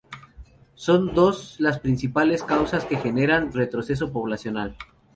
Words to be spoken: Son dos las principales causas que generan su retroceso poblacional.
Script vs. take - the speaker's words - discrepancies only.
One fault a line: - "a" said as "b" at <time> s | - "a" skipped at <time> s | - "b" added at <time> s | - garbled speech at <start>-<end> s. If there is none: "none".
- "su" skipped at 3.5 s